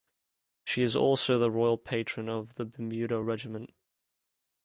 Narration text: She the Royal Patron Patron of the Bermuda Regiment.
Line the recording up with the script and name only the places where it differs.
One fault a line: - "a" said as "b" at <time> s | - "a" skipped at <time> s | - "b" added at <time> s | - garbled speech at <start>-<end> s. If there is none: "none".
- "is also" added at 0.8 s
- "Patron" skipped at 2.3 s